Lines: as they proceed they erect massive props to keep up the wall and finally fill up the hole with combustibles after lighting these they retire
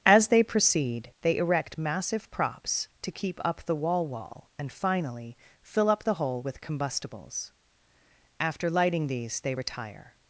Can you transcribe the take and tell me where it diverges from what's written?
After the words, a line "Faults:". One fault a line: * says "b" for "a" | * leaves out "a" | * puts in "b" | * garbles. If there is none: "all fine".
as they proceed they erect massive props to keep up the wall wall and finally fill up the hole with combustibles after lighting these they retire
Faults:
* puts in "wall"